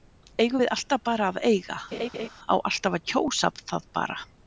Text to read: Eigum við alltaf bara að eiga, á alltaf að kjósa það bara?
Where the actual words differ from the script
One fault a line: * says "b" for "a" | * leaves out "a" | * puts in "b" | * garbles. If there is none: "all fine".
all fine